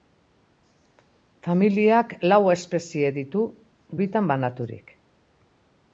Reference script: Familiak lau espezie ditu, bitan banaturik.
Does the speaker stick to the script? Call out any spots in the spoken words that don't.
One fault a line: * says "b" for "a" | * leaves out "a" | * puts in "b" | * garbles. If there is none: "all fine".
all fine